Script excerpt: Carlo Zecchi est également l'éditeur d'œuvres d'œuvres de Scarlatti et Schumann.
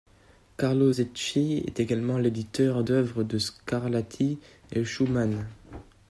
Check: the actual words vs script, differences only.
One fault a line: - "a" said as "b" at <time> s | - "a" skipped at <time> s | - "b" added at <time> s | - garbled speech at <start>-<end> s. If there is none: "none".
- "d'œuvres" skipped at 3.2 s